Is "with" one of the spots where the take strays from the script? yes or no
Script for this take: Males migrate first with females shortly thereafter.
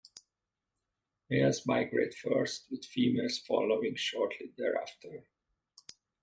no